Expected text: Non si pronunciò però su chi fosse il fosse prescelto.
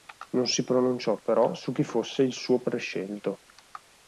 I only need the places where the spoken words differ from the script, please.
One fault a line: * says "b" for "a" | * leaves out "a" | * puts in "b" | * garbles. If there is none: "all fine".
* says "suo" for "fosse"